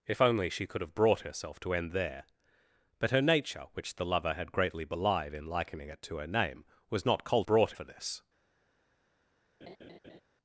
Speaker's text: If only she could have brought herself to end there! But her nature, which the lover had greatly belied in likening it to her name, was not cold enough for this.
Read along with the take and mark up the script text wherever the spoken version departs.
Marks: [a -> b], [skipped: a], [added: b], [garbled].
If only she could have brought herself to end there! But her nature, which the lover had greatly belied in likening it to her name, was not cold [enough -> brought] for this.